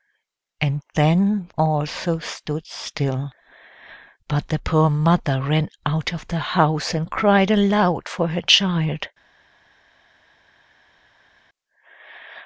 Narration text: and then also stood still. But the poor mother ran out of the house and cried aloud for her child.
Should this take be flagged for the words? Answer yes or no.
no